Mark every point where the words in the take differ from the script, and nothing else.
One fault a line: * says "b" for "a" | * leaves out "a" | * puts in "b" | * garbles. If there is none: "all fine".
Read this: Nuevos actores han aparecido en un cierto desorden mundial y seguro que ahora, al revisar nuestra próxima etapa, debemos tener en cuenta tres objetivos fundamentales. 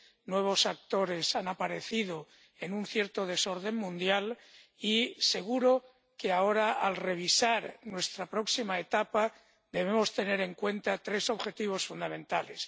all fine